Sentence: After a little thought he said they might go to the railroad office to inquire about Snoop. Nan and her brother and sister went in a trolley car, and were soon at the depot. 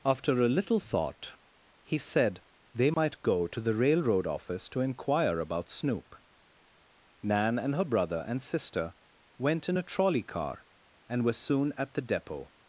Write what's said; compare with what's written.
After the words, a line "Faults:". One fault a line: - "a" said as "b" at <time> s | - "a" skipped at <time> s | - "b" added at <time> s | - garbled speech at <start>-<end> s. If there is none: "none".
After a little thought he said they might go to the railroad office to inquire about Snoop. Nan and her brother and sister went in a trolley car, and were soon at the depot.
Faults:
none